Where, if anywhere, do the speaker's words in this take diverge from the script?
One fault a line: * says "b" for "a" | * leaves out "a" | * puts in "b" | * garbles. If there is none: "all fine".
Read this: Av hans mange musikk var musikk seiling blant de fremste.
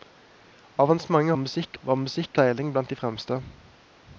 all fine